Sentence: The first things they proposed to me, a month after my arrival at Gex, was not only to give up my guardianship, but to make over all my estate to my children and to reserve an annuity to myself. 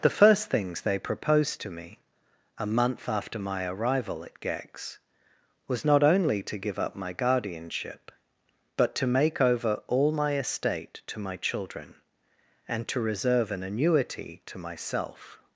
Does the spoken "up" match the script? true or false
true